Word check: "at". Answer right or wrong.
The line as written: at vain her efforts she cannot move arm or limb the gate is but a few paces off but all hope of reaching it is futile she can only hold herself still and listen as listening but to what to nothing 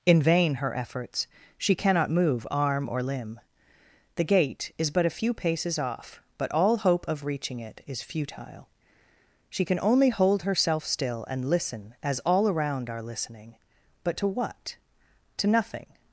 wrong